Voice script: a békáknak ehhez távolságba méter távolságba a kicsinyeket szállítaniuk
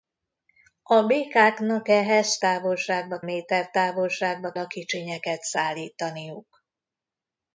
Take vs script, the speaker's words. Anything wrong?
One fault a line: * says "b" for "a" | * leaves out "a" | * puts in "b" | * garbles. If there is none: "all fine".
all fine